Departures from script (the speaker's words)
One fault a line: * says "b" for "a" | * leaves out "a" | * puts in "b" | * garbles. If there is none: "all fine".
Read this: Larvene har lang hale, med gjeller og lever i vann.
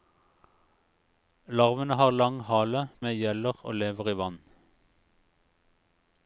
all fine